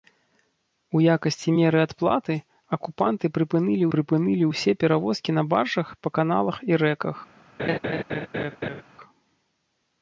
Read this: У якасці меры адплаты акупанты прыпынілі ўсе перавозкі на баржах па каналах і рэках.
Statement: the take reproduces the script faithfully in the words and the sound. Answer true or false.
false